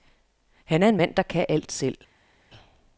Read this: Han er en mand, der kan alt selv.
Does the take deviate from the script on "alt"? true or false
false